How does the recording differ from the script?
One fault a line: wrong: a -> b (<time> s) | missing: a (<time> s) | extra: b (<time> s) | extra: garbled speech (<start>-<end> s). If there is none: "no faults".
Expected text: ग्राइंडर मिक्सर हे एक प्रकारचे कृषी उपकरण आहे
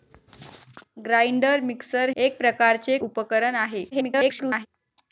missing: हे (2.1 s)
missing: कृषी (3.0 s)
extra: garbled speech (3.9-4.7 s)